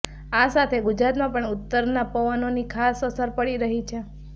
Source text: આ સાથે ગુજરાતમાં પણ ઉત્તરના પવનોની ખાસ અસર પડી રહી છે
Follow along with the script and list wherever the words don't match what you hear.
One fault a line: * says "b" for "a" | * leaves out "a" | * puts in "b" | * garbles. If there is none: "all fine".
all fine